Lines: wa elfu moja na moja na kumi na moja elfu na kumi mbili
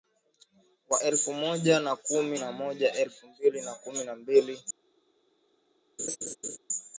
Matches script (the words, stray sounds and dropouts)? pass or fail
fail